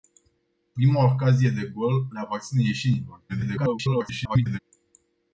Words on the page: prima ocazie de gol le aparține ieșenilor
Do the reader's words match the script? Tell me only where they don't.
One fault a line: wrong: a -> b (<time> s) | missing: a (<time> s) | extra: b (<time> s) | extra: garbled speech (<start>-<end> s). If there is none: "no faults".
extra: garbled speech (3.3-4.6 s)